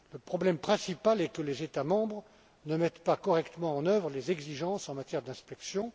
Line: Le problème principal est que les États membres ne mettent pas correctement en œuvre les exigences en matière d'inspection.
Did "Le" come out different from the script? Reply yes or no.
no